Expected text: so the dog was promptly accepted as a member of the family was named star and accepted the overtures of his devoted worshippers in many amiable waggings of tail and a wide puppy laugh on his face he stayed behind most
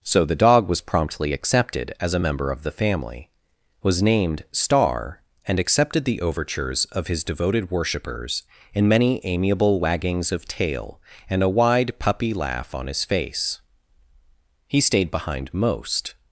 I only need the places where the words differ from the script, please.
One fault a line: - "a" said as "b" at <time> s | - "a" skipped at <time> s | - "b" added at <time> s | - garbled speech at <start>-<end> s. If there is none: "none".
none